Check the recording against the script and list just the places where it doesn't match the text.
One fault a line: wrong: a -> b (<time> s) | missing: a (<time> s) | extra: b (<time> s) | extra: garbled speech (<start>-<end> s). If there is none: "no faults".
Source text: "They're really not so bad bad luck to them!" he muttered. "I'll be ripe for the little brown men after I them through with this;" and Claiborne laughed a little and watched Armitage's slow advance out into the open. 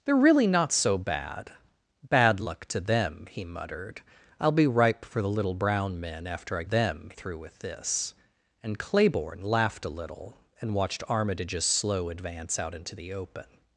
no faults